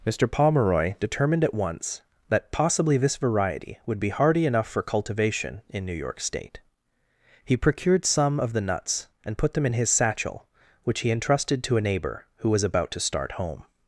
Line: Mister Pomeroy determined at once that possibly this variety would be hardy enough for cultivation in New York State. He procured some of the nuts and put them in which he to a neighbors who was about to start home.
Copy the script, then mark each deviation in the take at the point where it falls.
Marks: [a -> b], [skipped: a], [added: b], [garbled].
Mister Pomeroy determined at once that possibly this variety would be hardy enough for cultivation in New York State. He procured some of the nuts and put them in [added: his satchel] which he [added: entrusted] to a [neighbors -> neighbor] who was about to start home.